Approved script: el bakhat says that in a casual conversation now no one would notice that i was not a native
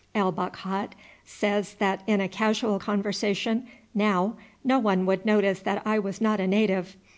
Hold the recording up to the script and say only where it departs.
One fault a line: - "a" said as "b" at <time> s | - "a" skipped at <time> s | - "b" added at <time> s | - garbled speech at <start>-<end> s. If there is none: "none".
none